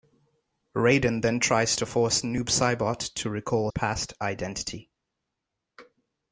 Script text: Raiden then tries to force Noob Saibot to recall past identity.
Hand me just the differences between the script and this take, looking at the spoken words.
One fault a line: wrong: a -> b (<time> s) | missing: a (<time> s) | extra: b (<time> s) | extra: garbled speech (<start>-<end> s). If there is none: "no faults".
no faults